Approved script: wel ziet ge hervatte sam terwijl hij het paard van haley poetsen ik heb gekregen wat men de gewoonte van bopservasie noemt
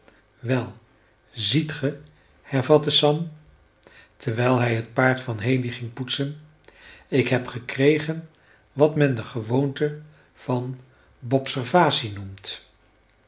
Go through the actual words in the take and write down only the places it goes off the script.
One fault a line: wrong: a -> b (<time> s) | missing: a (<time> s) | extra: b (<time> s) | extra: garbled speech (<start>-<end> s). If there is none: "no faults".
extra: ging (5.7 s)